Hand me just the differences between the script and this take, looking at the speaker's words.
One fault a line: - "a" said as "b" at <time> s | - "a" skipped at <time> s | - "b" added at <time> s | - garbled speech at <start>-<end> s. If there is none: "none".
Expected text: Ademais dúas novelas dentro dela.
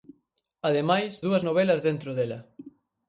none